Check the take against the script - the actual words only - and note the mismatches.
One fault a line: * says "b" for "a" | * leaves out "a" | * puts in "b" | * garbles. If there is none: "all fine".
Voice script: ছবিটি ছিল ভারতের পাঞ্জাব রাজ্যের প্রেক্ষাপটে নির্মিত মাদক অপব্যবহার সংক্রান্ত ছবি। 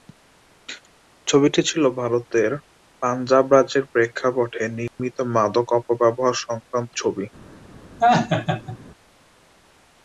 all fine